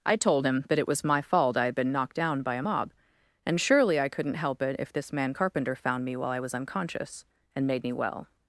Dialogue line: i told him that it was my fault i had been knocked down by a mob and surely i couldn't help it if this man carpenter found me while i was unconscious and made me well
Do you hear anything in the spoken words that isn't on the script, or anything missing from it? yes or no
no